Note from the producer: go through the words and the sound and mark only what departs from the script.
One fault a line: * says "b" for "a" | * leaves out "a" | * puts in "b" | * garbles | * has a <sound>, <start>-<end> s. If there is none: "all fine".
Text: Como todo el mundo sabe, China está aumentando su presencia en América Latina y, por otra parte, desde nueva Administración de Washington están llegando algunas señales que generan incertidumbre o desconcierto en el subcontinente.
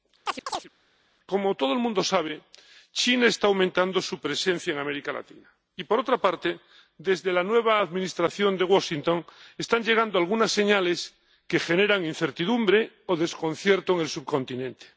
* has a chirp, 0.3-0.7 s
* puts in "la"